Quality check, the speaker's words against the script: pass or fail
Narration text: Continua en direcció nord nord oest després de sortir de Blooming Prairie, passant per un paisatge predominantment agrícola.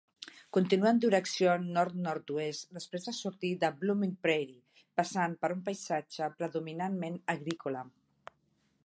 pass